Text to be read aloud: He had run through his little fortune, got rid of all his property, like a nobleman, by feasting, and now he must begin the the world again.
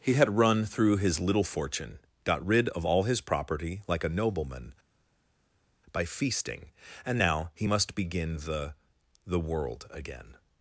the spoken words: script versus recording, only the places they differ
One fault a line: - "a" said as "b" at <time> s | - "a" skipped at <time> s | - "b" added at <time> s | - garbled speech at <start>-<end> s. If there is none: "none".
none